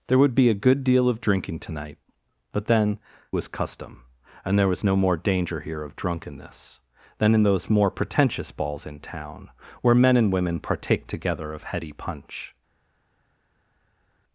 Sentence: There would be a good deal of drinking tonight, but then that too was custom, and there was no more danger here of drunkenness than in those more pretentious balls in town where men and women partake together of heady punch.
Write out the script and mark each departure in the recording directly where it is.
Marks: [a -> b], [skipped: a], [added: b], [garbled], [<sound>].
There would be a good deal of drinking tonight, but then [skipped: that too] was custom, and there was no more danger here of drunkenness than in those more pretentious balls in town where men and women partake together of heady punch.